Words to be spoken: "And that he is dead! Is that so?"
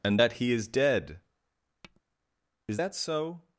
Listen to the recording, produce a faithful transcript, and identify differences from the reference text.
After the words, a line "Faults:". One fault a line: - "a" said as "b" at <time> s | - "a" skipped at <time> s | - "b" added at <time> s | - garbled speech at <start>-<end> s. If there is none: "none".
"And that he is dead! Is that so?"
Faults:
none